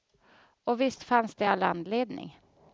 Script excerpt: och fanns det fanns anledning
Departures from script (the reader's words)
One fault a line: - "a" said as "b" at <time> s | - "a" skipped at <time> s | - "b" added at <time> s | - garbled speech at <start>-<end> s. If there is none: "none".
- "visst" added at 0.8 s
- "fanns" said as "all" at 1.5 s